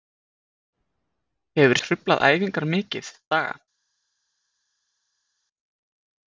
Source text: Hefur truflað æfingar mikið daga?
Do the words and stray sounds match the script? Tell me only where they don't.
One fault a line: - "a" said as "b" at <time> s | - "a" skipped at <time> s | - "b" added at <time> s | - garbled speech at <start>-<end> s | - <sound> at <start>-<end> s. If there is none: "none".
none